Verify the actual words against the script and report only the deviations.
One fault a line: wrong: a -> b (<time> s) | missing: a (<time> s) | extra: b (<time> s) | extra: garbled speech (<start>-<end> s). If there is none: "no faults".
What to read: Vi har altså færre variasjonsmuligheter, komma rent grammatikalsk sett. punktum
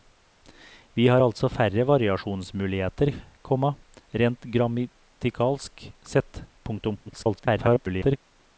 extra: garbled speech (7.1-8.2 s)